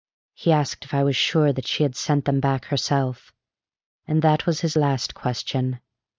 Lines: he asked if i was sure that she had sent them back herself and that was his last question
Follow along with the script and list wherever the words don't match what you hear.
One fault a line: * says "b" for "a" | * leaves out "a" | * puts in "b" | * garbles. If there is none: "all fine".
all fine